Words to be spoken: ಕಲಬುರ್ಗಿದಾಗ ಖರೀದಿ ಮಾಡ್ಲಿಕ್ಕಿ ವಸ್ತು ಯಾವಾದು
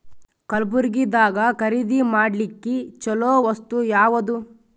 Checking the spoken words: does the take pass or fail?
fail